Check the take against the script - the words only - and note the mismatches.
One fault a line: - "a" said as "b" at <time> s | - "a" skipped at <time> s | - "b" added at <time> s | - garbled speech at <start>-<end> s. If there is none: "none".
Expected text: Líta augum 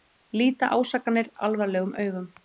- "ásakanir alvarlegum" added at 0.8 s